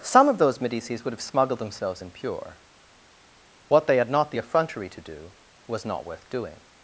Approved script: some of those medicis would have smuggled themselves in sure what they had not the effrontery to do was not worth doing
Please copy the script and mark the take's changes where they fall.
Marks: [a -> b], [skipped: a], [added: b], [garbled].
some of those medicis would have smuggled themselves in [sure -> pure] what they had not the effrontery to do was not worth doing